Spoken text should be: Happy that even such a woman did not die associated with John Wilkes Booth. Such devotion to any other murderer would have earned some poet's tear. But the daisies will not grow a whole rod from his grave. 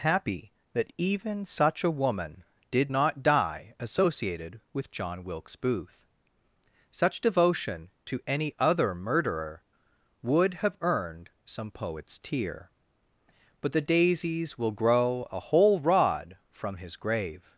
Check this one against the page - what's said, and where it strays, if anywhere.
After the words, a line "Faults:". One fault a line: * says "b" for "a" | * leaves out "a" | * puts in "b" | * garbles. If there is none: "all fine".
Happy that even such a woman did not die associated with John Wilkes Booth. Such devotion to any other murderer would have earned some poet's tear. But the daisies will grow a whole rod from his grave.
Faults:
* leaves out "not"